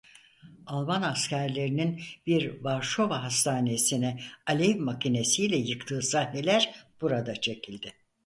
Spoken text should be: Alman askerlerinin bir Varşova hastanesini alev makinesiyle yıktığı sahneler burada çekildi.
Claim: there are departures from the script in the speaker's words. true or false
false